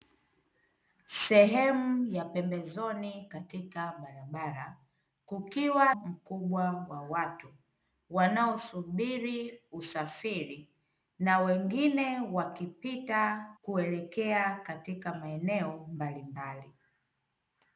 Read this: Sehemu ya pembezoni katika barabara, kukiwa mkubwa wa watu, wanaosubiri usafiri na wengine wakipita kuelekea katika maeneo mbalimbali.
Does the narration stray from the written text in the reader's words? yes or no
no